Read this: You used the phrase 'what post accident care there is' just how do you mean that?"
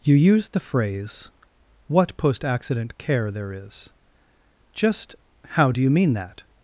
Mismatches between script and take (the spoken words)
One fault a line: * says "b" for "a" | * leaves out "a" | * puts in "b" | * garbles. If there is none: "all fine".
all fine